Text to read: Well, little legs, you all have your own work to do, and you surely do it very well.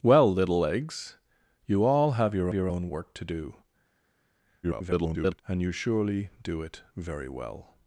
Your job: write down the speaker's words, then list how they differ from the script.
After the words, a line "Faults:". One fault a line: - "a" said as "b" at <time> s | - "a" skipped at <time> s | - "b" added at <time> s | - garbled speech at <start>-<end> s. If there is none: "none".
Well, little legs, you all have your your own work to do, [garbled] and you surely do it very well.
Faults:
- "your" added at 2.5 s
- garbled speech at 4.6-5.4 s